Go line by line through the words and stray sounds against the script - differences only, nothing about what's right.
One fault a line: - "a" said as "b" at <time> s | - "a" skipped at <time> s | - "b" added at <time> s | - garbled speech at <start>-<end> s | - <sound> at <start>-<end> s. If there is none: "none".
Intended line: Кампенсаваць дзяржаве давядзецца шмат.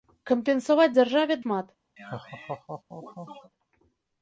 - "давядзецца" skipped at 1.4 s
- laugh at 2.0-3.5 s